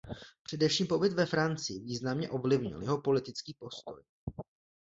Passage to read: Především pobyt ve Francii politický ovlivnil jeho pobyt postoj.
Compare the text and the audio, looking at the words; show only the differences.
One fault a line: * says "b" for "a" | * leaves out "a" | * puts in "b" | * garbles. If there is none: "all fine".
* says "významně" for "politický"
* says "politický" for "pobyt"